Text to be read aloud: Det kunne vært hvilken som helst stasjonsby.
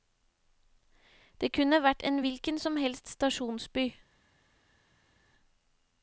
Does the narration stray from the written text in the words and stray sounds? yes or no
yes